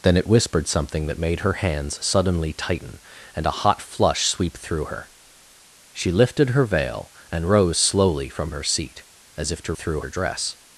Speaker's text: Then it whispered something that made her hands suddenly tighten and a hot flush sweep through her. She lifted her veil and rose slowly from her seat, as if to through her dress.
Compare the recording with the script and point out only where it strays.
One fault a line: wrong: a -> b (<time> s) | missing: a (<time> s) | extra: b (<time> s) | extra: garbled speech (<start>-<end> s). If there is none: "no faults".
no faults